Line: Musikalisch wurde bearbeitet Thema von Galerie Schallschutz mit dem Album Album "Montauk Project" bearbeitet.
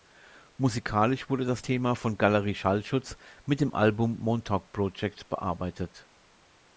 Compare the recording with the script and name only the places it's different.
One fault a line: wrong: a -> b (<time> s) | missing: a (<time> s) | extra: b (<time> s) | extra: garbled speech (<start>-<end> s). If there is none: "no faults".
wrong: bearbeitet -> das (1.4 s)
missing: Album (4.2 s)